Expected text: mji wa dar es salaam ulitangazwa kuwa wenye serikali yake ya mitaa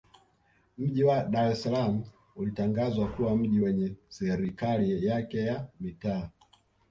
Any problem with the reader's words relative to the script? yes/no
yes